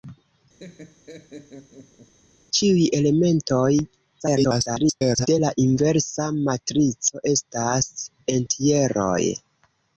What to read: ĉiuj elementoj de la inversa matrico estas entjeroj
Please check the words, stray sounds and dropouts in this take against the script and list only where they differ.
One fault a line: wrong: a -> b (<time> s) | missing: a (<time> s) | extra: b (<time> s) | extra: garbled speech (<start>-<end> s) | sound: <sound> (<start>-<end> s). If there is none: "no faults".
sound: laugh (0.6-2.1 s)
extra: garbled speech (4.2-5.3 s)